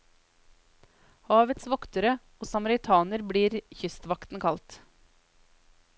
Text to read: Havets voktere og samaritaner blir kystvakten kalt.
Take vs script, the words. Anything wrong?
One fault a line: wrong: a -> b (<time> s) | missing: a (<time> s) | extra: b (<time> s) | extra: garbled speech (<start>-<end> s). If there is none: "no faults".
no faults